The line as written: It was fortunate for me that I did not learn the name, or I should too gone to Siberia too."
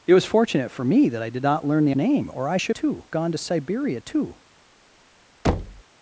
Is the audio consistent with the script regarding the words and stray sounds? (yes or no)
no